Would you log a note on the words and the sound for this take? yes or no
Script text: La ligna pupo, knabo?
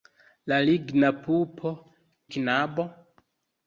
no